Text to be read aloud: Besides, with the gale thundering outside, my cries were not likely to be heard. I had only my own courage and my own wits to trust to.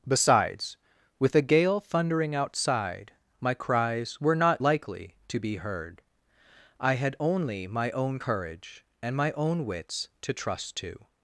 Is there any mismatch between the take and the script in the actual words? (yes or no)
no